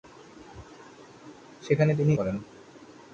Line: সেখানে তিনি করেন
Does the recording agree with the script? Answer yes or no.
yes